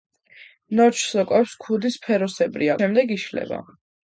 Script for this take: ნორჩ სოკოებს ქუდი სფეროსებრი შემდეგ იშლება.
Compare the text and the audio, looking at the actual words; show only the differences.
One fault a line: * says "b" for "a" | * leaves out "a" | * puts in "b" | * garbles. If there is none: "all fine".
all fine